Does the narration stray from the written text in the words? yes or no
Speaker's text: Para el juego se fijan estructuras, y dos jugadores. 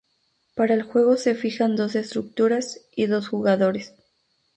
yes